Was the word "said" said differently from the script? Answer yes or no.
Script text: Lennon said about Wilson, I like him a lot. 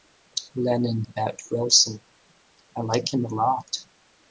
yes